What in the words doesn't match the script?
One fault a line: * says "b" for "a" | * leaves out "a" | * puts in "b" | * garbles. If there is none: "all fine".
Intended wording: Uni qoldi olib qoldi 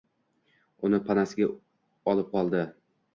* says "panasiga" for "qoldi"